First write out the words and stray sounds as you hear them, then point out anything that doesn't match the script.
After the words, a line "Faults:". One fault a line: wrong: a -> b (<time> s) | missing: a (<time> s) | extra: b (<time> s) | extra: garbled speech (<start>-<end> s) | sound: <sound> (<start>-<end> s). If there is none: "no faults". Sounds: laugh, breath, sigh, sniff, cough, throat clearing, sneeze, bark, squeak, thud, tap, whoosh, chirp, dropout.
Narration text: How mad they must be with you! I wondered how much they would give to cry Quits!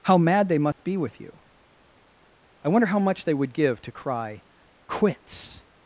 How mad they must be with you! I wonder how much they would give to cry Quits!
Faults:
sound: dropout (0.7-0.8 s)
wrong: wondered -> wonder (2.7 s)